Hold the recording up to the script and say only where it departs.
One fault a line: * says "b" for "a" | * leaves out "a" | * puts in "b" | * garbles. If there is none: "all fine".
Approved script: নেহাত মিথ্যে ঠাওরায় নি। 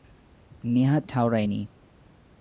* leaves out "মিথ্যে"